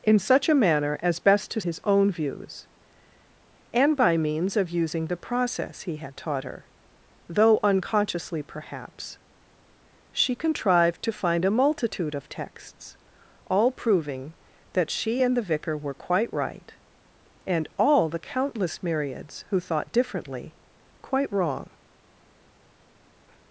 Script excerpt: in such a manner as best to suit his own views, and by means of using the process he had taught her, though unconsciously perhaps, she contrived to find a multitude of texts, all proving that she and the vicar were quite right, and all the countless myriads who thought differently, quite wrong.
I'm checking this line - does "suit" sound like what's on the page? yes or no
no